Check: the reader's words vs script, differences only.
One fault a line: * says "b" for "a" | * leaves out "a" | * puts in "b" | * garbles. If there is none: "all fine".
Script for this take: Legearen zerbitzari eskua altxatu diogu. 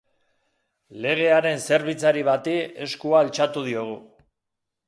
* puts in "bati"